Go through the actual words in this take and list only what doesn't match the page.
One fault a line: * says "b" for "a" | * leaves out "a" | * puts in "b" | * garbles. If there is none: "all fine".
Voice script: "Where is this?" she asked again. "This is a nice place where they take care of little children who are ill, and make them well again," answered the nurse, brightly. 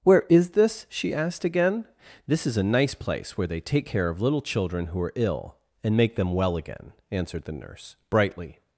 all fine